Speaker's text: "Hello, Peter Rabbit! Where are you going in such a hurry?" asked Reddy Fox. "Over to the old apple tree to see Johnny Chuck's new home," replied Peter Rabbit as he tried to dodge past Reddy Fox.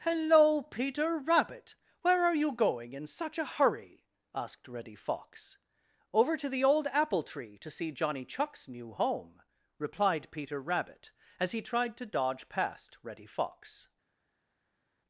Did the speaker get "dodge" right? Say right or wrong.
right